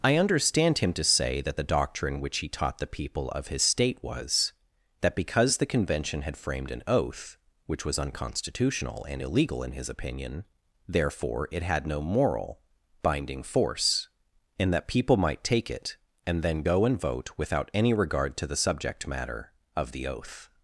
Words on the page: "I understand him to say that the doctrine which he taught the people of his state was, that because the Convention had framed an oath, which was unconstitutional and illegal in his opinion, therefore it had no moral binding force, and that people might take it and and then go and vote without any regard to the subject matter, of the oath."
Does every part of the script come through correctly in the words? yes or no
no